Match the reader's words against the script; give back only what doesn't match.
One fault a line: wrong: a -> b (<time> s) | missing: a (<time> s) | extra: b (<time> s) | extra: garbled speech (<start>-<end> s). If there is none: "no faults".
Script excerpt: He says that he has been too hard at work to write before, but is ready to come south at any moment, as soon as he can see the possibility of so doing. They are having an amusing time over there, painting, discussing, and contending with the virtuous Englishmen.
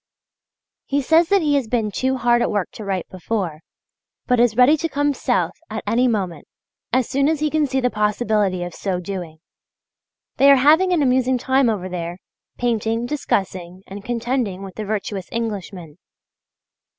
no faults